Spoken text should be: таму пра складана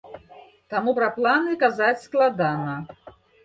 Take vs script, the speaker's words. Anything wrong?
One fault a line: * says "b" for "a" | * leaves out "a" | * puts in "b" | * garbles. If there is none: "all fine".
* puts in "планы казаць"